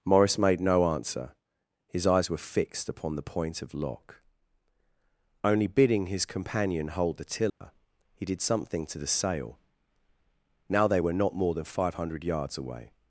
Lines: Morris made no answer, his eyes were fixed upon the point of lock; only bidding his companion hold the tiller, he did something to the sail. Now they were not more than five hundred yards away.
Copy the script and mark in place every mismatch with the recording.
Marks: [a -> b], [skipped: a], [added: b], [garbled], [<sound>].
Morris made no answer, his eyes were fixed upon the point of lock; only bidding his companion hold the tiller, [dropout] he did something to the sail. Now they were not more than five hundred yards away.